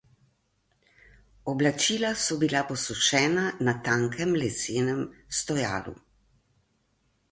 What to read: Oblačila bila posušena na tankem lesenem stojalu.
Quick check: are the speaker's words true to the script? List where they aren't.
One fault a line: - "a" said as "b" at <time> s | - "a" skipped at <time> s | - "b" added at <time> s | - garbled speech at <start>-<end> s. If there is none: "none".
- "so" added at 2.2 s